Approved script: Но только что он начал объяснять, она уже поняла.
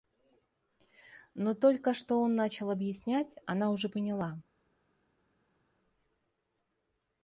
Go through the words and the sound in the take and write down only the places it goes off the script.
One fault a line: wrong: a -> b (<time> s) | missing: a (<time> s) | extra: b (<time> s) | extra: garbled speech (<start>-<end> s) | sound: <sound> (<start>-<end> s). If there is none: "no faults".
no faults